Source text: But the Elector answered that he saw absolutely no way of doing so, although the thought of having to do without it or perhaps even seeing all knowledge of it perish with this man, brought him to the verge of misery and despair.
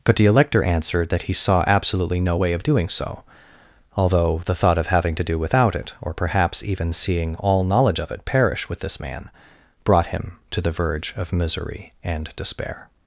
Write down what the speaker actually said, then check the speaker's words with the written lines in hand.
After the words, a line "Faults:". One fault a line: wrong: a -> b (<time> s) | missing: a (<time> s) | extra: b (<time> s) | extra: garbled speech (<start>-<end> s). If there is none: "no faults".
But the Elector answered that he saw absolutely no way of doing so, although the thought of having to do without it or perhaps even seeing all knowledge of it perish with this man, brought him to the verge of misery and despair.
Faults:
no faults